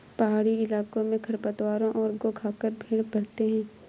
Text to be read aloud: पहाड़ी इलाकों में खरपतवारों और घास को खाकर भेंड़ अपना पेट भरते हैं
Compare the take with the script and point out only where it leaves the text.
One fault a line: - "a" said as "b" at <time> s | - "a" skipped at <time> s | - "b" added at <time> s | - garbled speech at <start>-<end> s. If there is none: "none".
- "घास" skipped at 2.1 s
- "अपना पेट" skipped at 3.0 s